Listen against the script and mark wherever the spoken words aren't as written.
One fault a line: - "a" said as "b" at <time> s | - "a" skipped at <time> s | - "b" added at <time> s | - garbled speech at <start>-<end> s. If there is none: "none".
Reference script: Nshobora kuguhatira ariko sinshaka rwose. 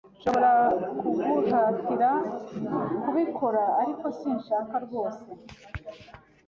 - "kubikora" added at 3.0 s